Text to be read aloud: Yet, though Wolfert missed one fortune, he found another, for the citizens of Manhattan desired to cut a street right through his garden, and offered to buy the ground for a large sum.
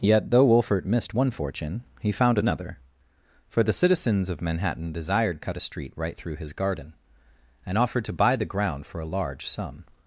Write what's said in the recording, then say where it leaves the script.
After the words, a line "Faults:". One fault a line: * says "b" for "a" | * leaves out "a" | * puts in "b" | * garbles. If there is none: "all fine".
Yet, though Wolfert missed one fortune, he found another, for the citizens of Manhattan desired cut a street right through his garden, and offered to buy the ground for a large sum.
Faults:
* leaves out "to"